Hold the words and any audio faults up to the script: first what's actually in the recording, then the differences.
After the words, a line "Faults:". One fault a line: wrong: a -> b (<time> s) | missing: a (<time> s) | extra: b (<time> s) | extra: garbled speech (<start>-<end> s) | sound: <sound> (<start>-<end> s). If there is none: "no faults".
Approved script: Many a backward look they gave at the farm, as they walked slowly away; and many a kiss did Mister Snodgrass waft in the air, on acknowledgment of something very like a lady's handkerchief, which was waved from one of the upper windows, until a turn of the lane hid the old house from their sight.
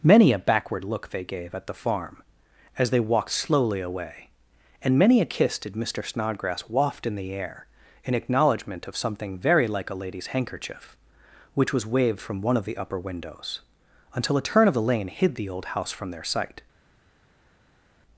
Many a backward look they gave at the farm, as they walked slowly away; and many a kiss did Mister Snodgrass waft in the air, in acknowledgment of something very like a lady's handkerchief, which was waved from one of the upper windows, until a turn of the lane hid the old house from their sight.
Faults:
wrong: on -> in (8.0 s)